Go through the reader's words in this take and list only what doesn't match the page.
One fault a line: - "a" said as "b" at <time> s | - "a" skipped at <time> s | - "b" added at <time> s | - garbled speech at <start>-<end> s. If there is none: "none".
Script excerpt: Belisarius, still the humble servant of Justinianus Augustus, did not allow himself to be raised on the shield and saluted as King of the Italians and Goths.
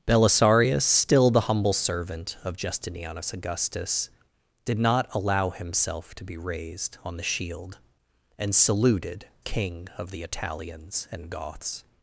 - "as" skipped at 9.3 s